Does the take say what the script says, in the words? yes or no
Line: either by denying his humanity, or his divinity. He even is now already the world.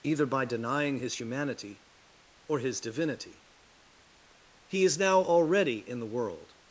no